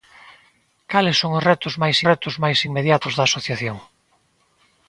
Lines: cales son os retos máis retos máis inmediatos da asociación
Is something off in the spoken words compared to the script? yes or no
no